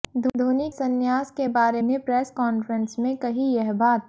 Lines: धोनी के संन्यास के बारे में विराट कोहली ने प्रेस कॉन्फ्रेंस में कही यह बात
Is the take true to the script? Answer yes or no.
no